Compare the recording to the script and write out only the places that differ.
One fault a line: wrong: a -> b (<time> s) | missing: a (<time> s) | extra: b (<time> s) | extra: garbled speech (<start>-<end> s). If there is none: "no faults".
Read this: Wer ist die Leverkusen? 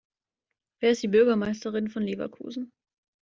extra: Bürgermeisterin von (1.1 s)